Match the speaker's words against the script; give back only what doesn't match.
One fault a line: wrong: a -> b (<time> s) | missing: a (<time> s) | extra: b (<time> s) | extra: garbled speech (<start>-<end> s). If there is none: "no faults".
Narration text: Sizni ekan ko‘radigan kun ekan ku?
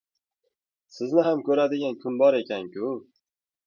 wrong: ekan -> ham (1.2 s)
extra: bor (2.2 s)